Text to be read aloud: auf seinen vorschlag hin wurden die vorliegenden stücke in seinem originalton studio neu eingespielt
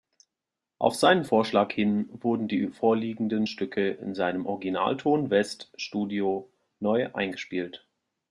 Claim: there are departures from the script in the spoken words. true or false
true